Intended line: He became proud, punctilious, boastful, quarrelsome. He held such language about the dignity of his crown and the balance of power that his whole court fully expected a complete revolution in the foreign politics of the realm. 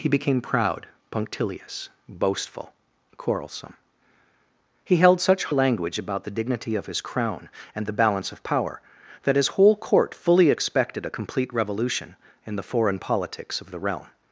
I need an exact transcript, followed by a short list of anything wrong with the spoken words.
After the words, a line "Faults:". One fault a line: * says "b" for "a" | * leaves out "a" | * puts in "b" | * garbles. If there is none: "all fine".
He became proud, punctilious, boastful, quarrelsome. He held such language about the dignity of his crown and the balance of power that his whole court fully expected a complete revolution in the foreign politics of the realm.
Faults:
all fine